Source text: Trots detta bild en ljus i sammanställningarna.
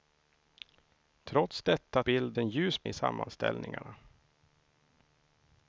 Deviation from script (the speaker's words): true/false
false